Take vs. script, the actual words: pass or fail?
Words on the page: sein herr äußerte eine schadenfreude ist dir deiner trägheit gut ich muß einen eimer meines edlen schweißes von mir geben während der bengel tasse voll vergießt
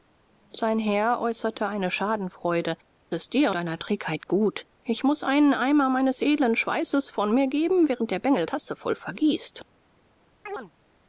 pass